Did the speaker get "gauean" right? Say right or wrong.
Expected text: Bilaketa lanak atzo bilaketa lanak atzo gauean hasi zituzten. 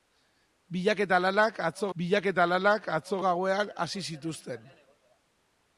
right